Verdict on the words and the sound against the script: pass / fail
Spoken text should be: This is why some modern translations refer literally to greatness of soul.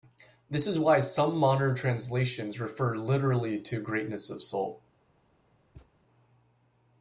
fail